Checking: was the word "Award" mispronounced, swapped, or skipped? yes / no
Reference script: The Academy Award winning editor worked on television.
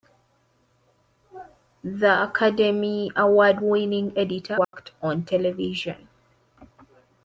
no